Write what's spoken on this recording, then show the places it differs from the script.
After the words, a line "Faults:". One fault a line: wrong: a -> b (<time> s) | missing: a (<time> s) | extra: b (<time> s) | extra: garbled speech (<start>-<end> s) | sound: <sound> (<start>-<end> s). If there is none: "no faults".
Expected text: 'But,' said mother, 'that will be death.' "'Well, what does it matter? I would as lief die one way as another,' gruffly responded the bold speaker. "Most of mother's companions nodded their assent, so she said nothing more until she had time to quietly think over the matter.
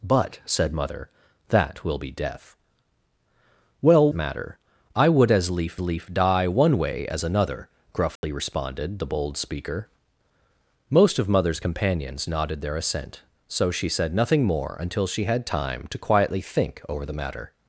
'But,' said mother, 'that will be death.' "'Well, matter? I would as lief lief die one way as another,' gruffly responded the bold speaker. "Most of mother's companions nodded their assent, so she said nothing more until she had time to quietly think over the matter.
Faults:
missing: what does it (4.1 s)
extra: lief (5.8 s)
sound: dropout (8.2-8.2 s)